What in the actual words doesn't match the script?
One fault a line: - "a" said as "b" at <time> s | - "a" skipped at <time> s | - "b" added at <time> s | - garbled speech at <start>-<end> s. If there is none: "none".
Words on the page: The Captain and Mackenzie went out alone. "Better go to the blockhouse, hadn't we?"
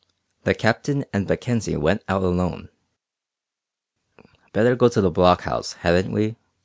none